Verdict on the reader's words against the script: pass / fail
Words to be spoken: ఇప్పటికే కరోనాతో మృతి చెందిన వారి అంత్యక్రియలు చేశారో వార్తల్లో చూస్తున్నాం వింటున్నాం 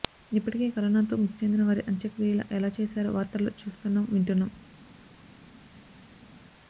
fail